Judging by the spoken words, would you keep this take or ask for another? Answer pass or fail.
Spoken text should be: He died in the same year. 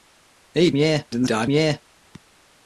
fail